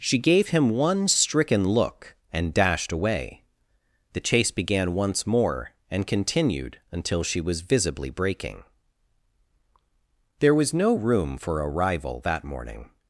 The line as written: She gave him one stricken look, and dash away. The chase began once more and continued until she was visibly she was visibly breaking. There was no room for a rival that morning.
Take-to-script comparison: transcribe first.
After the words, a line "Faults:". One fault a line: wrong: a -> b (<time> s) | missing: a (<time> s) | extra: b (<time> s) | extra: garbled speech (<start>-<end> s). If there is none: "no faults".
She gave him one stricken look, and dashed away. The chase began once more and continued until she was visibly breaking. There was no room for a rival that morning.
Faults:
wrong: dash -> dashed (2.5 s)
missing: she was visibly (8.1 s)